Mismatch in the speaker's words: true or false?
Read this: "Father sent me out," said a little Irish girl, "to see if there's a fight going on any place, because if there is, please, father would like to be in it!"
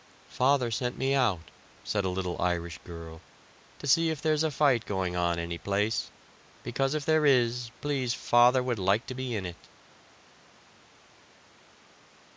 false